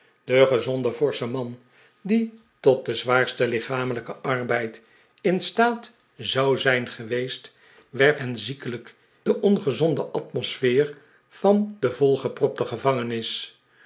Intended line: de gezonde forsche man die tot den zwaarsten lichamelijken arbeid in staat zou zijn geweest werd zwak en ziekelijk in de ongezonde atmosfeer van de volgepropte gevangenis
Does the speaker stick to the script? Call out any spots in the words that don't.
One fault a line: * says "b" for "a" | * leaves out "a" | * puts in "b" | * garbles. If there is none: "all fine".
* leaves out "zwak"
* leaves out "in"